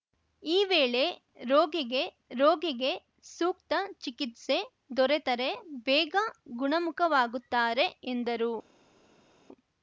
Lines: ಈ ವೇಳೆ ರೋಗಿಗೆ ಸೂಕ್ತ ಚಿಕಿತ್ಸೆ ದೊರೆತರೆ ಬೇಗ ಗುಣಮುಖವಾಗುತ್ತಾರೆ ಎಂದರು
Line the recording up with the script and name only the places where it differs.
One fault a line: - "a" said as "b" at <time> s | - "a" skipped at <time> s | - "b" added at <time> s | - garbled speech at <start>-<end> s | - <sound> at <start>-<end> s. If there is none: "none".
- "ರೋಗಿಗೆ" added at 2.4 s